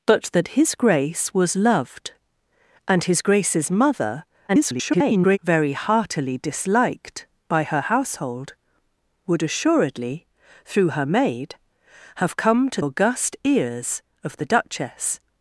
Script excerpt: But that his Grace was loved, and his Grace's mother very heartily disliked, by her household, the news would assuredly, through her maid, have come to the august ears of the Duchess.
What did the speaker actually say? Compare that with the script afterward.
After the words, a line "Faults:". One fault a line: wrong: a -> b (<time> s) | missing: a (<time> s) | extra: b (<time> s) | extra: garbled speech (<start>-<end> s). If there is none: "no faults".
But that his Grace was loved, and his Grace's mother [garbled] very heartily disliked, by her household, would assuredly, through her maid, have come to august ears of the Duchess.
Faults:
extra: garbled speech (4.5-5.4 s)
missing: the news (8.5 s)
missing: the (12.8 s)